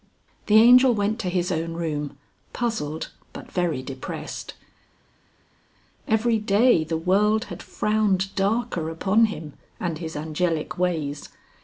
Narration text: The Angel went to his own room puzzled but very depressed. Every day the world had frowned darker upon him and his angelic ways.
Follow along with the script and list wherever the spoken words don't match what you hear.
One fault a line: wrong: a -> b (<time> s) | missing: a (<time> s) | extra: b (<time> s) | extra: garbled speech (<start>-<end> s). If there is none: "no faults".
no faults